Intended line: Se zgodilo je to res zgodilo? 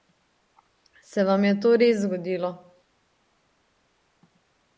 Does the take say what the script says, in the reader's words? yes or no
no